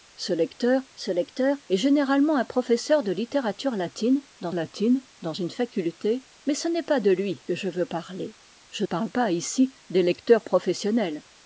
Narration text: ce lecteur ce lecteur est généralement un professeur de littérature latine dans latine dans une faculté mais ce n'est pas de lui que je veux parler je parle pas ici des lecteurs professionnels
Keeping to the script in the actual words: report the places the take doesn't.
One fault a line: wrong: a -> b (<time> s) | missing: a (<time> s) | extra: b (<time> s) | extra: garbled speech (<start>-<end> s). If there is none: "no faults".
no faults